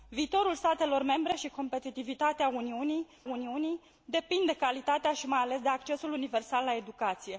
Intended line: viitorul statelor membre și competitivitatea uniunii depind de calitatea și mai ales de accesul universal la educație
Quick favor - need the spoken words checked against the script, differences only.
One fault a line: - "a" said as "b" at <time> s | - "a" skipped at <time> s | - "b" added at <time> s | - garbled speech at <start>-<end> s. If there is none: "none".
- "uniunii" added at 3.2 s